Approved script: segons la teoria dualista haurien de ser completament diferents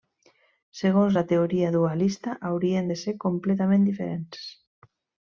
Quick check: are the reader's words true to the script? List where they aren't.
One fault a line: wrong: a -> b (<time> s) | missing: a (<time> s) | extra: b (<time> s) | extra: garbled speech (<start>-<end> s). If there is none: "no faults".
no faults